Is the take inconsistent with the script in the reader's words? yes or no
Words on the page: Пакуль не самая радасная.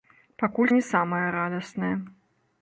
no